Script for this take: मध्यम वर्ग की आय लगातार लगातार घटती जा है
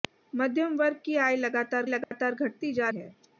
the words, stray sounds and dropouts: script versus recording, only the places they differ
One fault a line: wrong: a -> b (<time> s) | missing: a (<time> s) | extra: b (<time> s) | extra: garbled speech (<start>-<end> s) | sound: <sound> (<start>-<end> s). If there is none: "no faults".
sound: dropout (2.0-2.1 s)